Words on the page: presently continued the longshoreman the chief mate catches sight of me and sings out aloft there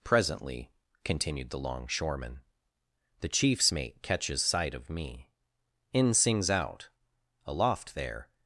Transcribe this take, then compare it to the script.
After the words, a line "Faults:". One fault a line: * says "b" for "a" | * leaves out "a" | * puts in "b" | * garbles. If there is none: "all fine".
presently continued the longshoreman the chiefs mate catches sight of me in sings out aloft there
Faults:
* says "chiefs" for "chief"
* says "in" for "and"